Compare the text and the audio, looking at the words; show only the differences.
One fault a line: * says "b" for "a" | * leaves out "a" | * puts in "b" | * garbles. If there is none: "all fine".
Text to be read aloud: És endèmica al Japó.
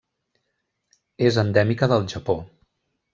* says "del" for "al"